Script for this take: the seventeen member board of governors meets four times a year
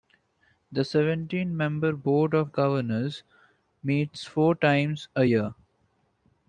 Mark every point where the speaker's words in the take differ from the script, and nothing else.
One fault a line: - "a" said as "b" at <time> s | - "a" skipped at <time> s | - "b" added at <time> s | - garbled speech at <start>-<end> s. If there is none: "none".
none